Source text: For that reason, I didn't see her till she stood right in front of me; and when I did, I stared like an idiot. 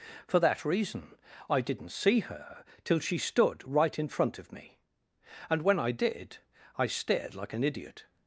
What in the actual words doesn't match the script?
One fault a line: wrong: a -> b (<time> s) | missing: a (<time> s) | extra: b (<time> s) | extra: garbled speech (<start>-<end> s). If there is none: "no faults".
no faults